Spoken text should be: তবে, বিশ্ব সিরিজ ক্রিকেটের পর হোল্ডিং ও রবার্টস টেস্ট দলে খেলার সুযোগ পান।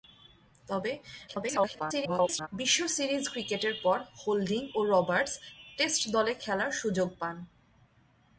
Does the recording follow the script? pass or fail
fail